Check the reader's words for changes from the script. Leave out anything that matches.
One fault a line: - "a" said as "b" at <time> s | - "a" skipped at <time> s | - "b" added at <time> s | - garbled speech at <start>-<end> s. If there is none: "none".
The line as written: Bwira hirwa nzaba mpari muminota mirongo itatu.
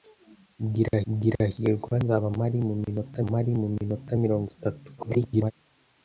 - "bwira" added at 1.1 s
- "mpari muminota" added at 3.3 s
- garbled speech at 5.0-5.5 s